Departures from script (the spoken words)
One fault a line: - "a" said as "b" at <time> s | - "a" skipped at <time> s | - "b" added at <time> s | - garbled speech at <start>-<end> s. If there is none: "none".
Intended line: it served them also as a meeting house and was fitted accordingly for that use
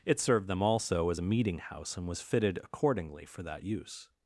none